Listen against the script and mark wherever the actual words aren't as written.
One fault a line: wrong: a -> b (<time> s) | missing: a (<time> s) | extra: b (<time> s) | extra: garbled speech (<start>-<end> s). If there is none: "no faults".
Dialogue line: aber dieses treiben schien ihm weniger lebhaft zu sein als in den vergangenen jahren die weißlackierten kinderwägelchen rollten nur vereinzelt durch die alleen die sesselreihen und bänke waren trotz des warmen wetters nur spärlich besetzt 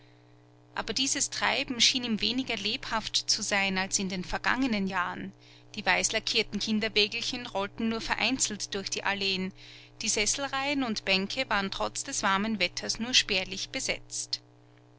no faults